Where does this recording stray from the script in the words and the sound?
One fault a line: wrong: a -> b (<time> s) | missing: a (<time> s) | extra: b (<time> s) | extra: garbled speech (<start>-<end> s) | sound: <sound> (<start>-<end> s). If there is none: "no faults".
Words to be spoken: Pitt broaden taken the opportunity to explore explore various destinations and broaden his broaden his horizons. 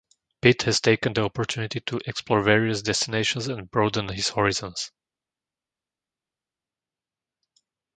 wrong: broaden -> has (0.6 s)
missing: explore (2.4 s)
missing: broaden his (4.3 s)